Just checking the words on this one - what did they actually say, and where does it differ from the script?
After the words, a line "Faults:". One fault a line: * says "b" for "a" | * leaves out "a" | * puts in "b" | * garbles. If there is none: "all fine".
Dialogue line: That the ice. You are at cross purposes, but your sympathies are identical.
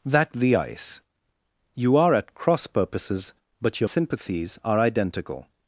That the ice. You are at cross purposes, but your sympathies are identical.
Faults:
all fine